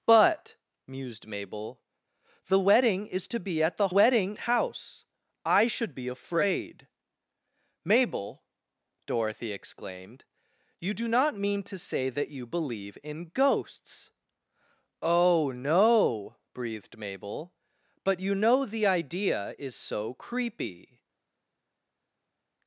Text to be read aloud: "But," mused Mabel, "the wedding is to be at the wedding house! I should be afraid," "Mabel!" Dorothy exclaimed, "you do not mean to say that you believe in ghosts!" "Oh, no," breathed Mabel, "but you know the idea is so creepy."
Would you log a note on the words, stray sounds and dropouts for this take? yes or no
no